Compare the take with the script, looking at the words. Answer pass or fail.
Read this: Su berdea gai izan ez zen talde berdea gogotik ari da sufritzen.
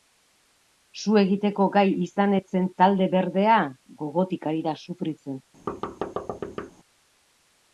fail